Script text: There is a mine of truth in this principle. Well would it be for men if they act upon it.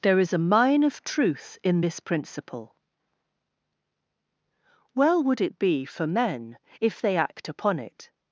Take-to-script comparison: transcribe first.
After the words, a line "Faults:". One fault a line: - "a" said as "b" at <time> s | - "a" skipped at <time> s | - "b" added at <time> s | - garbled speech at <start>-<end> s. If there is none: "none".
There is a mine of truth in this principle. Well would it be for men if they act upon it.
Faults:
none